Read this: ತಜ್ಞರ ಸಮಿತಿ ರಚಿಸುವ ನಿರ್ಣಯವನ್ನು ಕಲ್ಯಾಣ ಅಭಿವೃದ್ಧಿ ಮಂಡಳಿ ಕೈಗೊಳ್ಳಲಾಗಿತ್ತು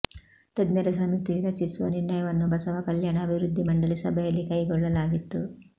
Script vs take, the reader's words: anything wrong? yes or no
yes